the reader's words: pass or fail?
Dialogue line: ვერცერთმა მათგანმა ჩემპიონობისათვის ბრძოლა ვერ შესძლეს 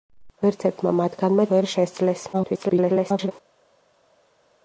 fail